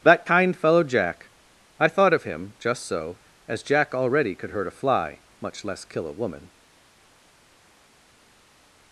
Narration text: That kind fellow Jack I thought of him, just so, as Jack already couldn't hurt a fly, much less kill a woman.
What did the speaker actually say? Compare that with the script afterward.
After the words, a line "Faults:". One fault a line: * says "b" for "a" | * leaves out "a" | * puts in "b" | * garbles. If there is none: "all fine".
That kind fellow Jack I thought of him, just so, as Jack already could hurt a fly, much less kill a woman.
Faults:
* says "could" for "couldn't"